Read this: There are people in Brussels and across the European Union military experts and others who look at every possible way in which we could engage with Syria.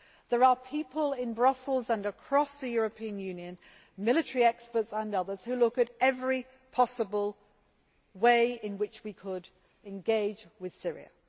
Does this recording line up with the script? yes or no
yes